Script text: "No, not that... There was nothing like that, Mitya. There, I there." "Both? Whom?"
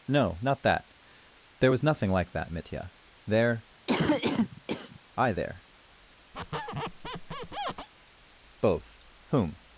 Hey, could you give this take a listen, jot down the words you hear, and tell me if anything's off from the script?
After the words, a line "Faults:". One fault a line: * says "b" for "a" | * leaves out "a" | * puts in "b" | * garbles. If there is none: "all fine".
"No, not that... There was nothing like that, Mitya. There, I there." "Both? Whom?"
Faults:
all fine